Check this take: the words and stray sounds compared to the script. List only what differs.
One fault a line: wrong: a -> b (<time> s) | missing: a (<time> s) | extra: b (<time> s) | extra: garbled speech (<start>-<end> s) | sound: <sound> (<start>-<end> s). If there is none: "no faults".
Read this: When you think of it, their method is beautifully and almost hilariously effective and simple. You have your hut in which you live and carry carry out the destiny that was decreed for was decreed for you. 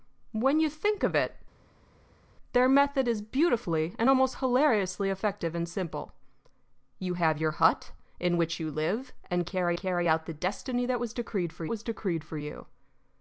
no faults